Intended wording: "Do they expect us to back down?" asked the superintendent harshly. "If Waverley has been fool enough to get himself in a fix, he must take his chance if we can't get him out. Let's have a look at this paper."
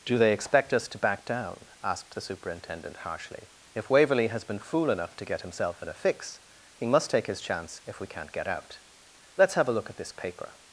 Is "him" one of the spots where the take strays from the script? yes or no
yes